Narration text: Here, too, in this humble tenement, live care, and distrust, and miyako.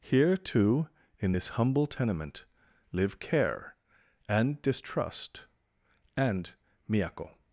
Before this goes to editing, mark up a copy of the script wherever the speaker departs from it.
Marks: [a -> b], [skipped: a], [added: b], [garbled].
Here, too, in this humble tenement, live care, and distrust, and miyako.